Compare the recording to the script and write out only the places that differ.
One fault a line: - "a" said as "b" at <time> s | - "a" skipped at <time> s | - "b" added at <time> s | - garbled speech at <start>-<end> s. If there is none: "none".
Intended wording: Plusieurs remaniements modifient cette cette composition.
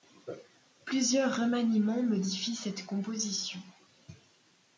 - "cette" skipped at 2.9 s